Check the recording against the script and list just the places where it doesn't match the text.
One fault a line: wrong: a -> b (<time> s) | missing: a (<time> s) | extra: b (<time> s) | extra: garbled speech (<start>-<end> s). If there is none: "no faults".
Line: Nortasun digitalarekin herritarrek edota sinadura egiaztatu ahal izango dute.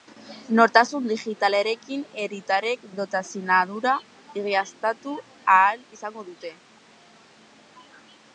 no faults